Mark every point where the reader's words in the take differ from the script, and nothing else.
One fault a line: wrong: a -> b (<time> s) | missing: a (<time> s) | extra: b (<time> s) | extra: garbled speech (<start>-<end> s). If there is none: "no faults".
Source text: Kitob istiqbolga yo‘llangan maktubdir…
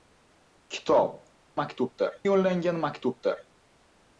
wrong: istiqbolga -> maktubdir (1.6 s)